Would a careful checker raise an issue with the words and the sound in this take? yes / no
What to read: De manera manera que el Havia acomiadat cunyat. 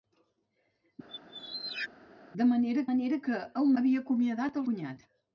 yes